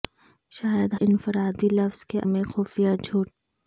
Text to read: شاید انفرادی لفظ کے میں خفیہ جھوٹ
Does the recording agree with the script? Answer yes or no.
yes